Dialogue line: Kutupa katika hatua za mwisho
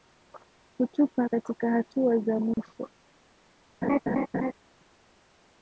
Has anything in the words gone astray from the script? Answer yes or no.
no